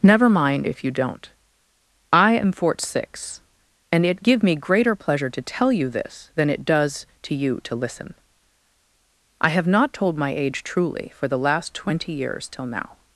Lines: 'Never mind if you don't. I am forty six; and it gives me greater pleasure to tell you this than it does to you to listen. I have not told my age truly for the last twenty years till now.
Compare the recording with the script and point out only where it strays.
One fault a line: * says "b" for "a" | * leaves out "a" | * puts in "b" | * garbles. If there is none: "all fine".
* says "fort" for "forty"
* says "give" for "gives"